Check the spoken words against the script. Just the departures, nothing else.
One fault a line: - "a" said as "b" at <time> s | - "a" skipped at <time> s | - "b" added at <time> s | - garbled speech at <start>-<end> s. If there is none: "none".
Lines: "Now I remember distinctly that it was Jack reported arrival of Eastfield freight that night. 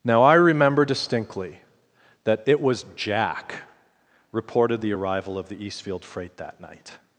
- "the" added at 4.8 s
- "the" added at 5.5 s